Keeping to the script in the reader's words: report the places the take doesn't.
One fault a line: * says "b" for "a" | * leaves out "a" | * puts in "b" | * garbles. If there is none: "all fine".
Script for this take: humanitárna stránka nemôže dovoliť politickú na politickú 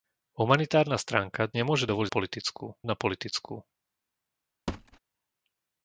all fine